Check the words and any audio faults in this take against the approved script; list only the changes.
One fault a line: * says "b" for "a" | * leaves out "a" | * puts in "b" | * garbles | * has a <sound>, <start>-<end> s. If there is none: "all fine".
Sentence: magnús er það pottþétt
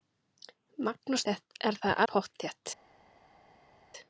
all fine